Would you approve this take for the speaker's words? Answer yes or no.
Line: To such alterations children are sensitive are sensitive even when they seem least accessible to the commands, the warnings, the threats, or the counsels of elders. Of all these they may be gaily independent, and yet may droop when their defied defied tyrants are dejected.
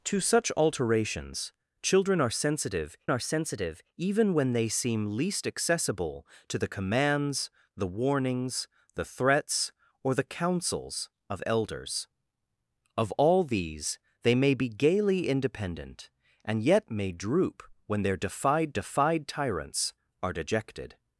yes